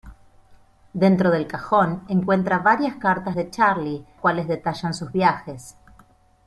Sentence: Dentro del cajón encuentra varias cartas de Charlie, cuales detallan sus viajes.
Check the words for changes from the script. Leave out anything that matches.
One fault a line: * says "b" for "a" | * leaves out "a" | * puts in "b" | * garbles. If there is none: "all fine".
all fine